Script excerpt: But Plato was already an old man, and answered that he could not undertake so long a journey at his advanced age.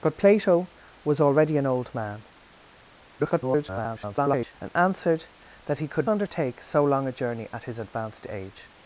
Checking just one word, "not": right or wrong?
wrong